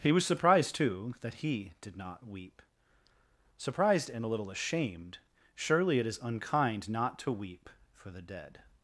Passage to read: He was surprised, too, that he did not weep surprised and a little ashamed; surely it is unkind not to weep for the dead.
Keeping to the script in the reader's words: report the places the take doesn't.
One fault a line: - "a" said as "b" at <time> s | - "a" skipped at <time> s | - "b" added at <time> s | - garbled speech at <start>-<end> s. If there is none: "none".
none